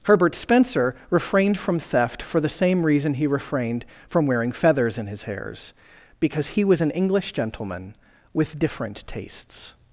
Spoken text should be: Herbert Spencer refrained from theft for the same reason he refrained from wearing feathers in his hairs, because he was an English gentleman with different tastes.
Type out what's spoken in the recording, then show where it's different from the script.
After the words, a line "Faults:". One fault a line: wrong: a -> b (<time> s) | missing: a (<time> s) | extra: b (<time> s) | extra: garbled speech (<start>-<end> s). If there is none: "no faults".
Herbert Spencer refrained from theft for the same reason he refrained from wearing feathers in his hairs, because he was an English gentleman with different tastes.
Faults:
no faults